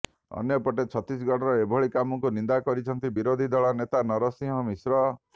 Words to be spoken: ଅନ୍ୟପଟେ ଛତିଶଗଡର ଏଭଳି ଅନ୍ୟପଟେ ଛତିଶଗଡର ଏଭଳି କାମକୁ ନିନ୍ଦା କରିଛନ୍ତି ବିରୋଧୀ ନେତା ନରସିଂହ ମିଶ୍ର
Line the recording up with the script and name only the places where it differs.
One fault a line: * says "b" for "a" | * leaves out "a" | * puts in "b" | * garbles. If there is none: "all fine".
* leaves out "ଅନ୍ୟପଟେ ଛତିଶଗଡର ଏଭଳି"
* puts in "ଦଳ"